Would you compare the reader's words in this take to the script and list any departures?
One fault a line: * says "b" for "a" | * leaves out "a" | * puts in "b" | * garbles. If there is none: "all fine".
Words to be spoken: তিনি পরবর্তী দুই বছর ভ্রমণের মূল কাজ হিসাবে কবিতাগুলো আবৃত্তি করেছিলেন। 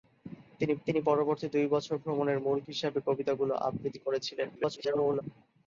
* puts in "তিনি"
* leaves out "কাজ"
* garbles